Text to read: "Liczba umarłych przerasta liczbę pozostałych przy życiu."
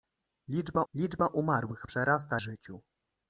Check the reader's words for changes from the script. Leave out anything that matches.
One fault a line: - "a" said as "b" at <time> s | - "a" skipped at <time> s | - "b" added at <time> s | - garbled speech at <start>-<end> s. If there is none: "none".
- "liczba" added at 0.9 s
- "liczbę pozostałych przy" skipped at 2.4 s